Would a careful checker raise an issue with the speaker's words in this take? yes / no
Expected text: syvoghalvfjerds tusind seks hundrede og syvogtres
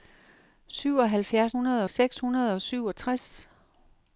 yes